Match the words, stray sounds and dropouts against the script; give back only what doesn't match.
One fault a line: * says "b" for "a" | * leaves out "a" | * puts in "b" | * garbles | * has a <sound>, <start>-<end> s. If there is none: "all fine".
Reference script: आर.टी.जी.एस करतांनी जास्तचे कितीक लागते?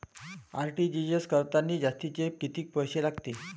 * puts in "पैसे"